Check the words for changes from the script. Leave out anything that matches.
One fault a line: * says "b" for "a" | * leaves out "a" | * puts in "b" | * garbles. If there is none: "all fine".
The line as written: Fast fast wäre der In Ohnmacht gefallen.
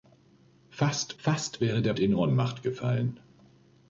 all fine